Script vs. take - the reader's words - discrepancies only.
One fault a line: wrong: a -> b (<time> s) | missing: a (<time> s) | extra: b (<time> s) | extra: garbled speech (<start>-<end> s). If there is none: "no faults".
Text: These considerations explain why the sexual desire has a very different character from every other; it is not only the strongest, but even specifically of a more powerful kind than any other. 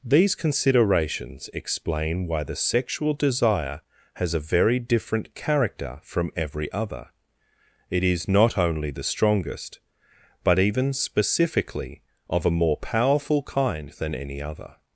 no faults